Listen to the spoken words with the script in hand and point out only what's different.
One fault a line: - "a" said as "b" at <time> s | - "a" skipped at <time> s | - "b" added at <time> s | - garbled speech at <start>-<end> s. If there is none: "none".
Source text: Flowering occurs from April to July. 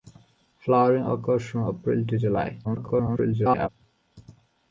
- garbled speech at 2.6-3.7 s